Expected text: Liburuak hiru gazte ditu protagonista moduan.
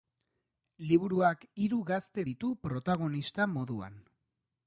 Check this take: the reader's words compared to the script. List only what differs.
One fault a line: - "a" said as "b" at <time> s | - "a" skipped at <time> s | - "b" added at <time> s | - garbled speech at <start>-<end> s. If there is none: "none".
none